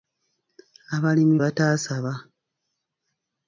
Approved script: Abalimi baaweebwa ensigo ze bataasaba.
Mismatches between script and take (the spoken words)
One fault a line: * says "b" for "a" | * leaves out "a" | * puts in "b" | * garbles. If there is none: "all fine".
* leaves out "baaweebwa ensigo ze"